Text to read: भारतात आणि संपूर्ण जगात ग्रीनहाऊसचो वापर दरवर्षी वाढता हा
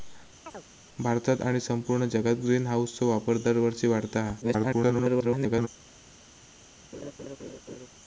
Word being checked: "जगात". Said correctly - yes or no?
yes